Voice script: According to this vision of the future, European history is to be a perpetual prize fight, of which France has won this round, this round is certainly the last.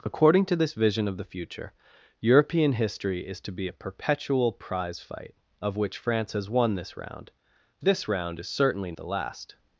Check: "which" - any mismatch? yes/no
no